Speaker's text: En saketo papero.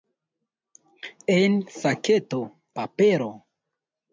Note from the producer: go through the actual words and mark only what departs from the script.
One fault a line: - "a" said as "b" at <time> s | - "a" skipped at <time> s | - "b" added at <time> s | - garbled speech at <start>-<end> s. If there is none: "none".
none